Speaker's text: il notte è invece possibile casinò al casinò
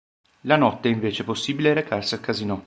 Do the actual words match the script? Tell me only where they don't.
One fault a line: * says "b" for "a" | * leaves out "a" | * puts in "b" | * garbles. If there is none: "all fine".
* says "la" for "il"
* says "recarsi" for "casinò"